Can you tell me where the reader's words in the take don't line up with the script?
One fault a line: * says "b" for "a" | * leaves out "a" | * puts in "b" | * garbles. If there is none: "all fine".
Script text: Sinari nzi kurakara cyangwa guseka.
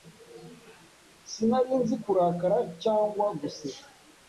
all fine